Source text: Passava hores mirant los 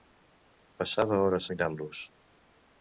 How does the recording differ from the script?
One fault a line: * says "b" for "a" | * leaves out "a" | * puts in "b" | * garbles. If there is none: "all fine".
all fine